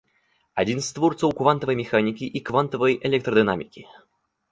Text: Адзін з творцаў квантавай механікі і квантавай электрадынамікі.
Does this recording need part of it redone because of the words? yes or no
no